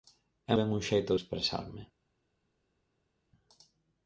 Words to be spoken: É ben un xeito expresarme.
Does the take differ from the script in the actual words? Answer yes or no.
no